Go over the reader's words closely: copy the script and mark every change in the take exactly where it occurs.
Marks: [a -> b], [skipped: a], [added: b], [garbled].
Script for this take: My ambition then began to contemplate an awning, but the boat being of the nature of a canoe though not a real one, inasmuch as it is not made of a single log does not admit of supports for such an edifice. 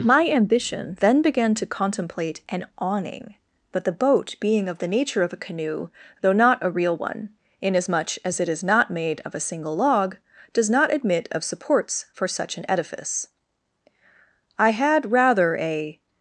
My ambition then began to contemplate an awning, but the boat being of the nature of a canoe though not a real one, inasmuch as it is not made of a single log does not admit of supports for such an edifice. [added: I had rather a]